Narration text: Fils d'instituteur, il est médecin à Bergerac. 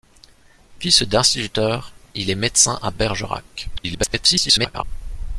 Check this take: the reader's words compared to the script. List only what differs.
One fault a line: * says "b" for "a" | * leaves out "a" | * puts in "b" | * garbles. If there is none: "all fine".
* garbles